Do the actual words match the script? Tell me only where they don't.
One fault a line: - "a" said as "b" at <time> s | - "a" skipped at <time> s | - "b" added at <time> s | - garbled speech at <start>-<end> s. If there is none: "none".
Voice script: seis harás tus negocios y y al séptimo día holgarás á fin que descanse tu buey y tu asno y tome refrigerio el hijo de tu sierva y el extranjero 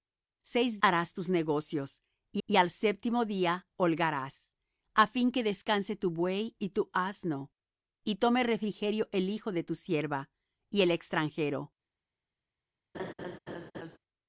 none